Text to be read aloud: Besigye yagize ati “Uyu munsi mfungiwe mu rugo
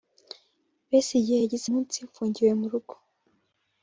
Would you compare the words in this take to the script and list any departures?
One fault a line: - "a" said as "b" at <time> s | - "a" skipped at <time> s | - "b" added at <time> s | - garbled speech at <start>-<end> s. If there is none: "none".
- "ati Uyu" skipped at 1.7 s